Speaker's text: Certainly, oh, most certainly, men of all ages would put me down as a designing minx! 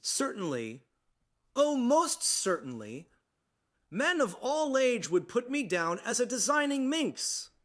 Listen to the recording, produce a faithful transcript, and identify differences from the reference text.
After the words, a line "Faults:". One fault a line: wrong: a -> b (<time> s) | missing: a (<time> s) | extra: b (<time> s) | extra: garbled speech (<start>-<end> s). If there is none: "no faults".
Certainly, oh, most certainly, men of all age would put me down as a designing minx!
Faults:
wrong: ages -> age (4.8 s)